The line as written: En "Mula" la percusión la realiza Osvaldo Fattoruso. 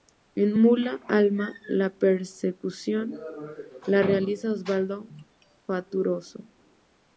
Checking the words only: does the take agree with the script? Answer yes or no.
no